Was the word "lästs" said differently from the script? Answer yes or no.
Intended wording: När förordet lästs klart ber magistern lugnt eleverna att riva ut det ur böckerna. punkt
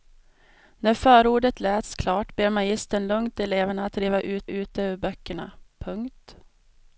no